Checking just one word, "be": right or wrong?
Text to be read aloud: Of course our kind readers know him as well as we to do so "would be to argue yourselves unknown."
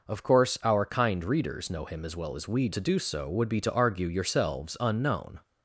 right